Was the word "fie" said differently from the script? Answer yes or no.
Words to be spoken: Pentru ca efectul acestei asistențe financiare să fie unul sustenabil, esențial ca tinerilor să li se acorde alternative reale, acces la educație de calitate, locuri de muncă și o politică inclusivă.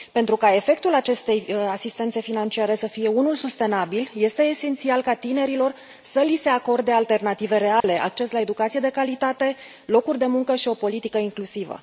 no